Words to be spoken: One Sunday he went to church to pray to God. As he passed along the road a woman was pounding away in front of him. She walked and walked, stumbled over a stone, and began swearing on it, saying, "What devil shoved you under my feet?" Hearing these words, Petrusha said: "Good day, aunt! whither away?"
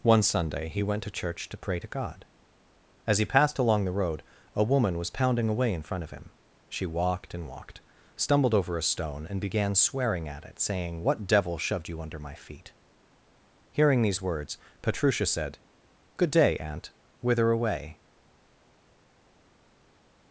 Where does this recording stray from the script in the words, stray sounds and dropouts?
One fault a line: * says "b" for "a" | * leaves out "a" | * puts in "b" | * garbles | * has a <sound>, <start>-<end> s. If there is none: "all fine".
* says "at" for "on"